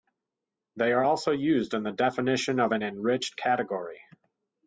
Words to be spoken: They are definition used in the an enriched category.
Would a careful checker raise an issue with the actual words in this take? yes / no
yes